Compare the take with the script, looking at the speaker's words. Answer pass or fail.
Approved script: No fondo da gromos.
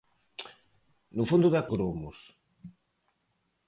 pass